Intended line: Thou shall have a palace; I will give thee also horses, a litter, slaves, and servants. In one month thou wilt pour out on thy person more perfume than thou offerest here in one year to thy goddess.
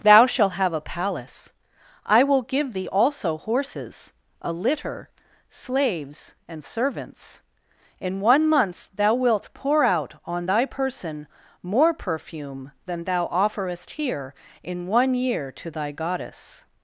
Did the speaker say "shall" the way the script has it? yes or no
no